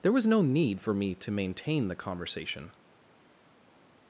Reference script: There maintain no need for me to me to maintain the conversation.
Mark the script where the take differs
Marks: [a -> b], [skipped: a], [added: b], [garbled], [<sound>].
There [maintain -> was] no need for me to [skipped: me to] maintain the conversation.